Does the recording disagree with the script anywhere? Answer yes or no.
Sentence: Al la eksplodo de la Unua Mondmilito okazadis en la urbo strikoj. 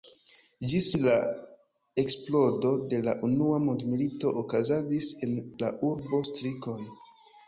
yes